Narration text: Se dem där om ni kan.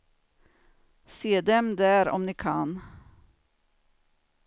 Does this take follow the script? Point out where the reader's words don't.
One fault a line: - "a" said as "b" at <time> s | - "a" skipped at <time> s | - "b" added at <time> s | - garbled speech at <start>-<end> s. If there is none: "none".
none